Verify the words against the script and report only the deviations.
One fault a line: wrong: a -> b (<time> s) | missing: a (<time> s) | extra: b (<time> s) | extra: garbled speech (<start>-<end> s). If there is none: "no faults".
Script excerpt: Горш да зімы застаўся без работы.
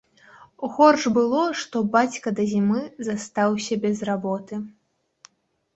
extra: было што бацька (1.2 s)